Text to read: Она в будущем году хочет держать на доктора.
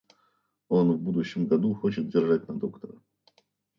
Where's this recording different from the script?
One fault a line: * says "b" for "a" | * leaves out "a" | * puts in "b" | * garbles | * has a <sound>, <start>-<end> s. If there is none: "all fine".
* says "Он" for "Она"